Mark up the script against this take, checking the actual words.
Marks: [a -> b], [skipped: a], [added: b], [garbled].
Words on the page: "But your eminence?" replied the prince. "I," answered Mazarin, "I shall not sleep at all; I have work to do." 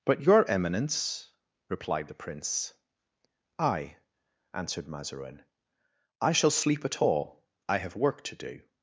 "But your eminence?" replied the prince. "I," answered Mazarin, "I shall [skipped: not] sleep at all; I have work to do."